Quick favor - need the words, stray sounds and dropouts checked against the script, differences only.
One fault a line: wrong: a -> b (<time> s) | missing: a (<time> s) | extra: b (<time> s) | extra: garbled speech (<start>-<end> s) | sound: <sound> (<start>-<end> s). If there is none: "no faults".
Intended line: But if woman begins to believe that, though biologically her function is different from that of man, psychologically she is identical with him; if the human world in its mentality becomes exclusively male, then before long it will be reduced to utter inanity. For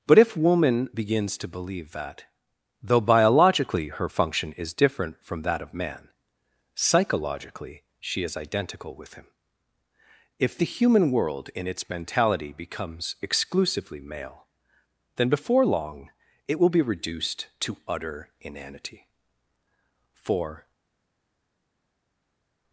no faults